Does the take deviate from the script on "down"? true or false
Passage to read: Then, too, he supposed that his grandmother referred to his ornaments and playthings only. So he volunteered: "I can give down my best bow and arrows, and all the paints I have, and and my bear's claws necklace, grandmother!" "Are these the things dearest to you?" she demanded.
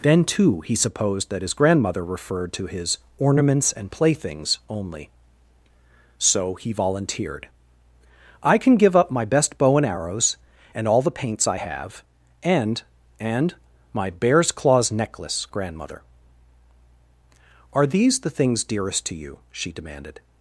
true